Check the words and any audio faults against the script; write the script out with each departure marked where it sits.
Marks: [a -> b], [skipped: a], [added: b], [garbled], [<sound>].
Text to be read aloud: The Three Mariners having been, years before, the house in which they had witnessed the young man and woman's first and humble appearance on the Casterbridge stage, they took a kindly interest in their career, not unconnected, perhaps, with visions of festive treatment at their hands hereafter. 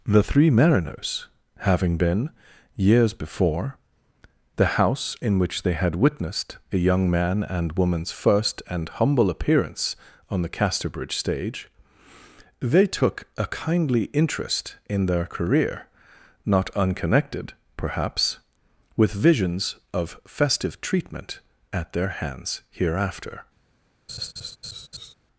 The Three Mariners having been, years before, the house in which they had witnessed [the -> a] young man and woman's first and humble appearance on the Casterbridge stage, they took a kindly interest in their career, not unconnected, perhaps, with visions of festive treatment at their hands hereafter. [laugh]